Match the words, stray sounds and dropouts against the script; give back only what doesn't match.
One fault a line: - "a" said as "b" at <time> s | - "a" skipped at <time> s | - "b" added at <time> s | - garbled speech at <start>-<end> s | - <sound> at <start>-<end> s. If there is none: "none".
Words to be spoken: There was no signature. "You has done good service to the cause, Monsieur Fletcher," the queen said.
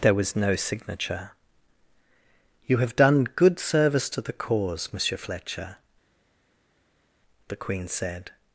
- "has" said as "have" at 2.8 s